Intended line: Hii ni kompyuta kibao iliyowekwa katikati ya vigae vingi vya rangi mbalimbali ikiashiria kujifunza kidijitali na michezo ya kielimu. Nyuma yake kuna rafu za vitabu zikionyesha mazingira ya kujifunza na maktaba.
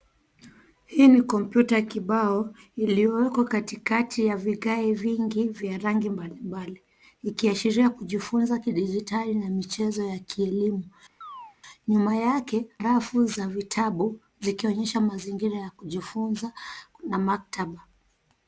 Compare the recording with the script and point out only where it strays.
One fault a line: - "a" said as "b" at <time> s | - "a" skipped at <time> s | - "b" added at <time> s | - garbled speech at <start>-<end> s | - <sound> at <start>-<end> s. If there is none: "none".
- chirp at 11.2-11.6 s
- "kuna" skipped at 12.7 s